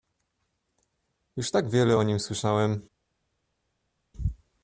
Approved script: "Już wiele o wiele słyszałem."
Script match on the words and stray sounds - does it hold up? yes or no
no